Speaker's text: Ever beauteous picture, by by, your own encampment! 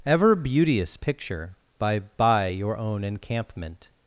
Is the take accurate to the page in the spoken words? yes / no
yes